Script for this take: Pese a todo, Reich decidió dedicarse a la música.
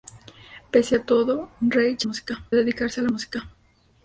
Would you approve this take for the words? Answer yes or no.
no